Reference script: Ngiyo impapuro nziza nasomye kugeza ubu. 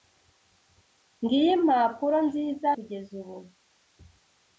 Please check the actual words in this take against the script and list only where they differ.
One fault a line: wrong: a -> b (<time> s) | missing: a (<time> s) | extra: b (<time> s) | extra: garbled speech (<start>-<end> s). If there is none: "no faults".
missing: nasomye (2.7 s)